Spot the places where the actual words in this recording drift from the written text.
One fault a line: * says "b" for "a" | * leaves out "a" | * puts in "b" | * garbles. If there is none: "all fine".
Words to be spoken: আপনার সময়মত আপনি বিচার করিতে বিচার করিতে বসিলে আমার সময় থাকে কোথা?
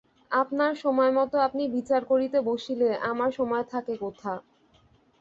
* leaves out "বিচার করিতে"